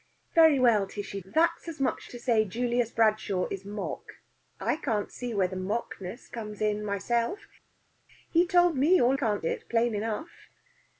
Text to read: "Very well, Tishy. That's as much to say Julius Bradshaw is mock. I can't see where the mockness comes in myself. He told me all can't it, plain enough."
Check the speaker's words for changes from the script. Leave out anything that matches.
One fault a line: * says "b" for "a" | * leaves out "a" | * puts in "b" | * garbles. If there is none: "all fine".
all fine